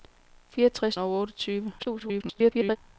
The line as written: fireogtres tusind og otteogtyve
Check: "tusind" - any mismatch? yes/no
yes